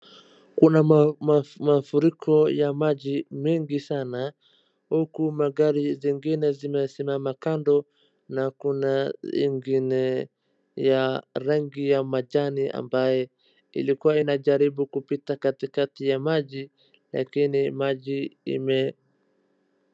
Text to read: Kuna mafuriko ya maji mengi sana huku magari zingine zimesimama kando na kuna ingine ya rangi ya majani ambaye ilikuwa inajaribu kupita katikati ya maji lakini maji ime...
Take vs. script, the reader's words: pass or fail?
pass